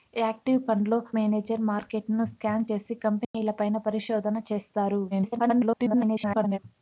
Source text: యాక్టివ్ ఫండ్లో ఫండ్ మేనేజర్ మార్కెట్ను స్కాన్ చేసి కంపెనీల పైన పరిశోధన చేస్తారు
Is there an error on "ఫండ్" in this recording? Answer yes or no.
yes